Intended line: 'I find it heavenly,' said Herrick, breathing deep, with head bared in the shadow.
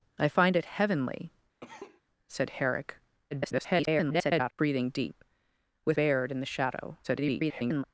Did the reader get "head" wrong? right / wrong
wrong